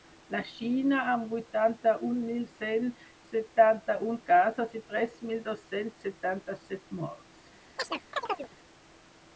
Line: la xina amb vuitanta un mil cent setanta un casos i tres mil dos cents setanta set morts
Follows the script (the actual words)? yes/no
yes